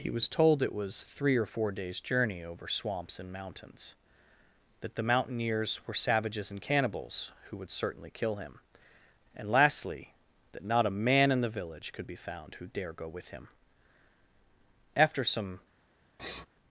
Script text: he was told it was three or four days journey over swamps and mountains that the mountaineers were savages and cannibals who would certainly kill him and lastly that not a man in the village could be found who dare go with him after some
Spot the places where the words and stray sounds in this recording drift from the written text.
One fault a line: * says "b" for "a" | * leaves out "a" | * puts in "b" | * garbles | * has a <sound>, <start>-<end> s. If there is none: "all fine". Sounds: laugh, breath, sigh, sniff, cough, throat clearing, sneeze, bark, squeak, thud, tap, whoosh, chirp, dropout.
* has a sniff, 16.2-16.5 s